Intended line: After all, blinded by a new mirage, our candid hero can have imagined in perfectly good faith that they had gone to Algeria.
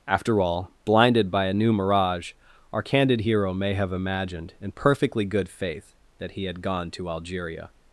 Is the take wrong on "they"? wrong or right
wrong